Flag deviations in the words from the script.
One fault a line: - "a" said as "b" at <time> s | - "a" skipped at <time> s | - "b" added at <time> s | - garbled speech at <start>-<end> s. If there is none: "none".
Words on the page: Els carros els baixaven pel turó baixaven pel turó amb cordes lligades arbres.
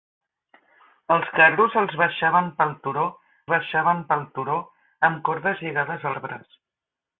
none